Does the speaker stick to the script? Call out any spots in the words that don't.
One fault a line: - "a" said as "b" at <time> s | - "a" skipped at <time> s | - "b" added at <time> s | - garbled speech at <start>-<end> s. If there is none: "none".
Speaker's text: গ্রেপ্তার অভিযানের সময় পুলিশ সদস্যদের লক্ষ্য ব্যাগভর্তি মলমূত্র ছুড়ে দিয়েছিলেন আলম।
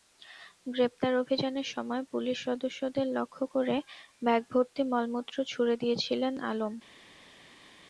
- "করে" added at 3.5 s